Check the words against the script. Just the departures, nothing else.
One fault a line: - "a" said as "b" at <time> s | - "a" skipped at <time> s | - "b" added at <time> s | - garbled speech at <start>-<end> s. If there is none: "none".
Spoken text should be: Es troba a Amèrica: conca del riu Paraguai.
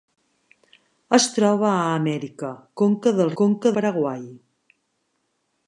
- "riu" said as "conca" at 3.4 s